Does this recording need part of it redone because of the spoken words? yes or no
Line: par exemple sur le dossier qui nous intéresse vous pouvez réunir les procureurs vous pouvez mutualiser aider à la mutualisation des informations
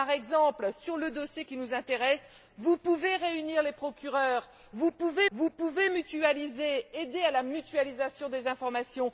yes